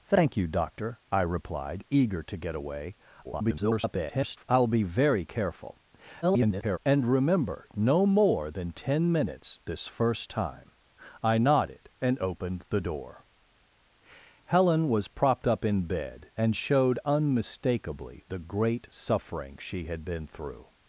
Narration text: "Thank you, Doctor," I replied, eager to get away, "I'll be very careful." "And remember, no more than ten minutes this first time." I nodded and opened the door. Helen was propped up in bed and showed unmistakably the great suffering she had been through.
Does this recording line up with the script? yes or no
no